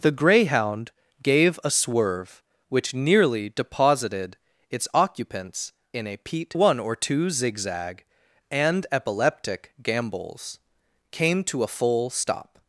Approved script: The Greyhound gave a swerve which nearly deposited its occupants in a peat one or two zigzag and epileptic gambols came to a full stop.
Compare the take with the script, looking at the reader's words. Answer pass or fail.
pass